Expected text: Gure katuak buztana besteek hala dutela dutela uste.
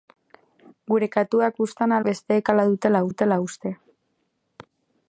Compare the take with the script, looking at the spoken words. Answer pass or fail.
pass